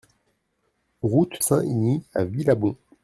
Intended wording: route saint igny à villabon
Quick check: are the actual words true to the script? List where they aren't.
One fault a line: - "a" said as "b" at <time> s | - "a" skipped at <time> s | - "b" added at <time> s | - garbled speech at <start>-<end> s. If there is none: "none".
none